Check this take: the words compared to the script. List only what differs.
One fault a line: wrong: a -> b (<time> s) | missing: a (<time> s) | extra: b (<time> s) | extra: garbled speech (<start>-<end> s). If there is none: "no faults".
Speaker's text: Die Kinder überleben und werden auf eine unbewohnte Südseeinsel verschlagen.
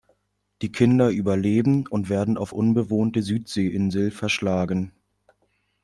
missing: eine (2.5 s)